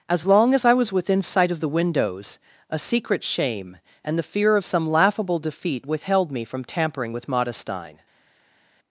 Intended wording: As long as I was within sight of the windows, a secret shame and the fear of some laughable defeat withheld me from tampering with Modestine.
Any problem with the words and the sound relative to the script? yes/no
no